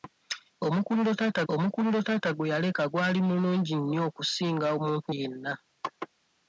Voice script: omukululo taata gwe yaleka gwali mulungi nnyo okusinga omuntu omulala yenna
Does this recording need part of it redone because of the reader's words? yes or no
yes